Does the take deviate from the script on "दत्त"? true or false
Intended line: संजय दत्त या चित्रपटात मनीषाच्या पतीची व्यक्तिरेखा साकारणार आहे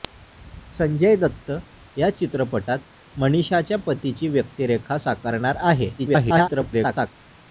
false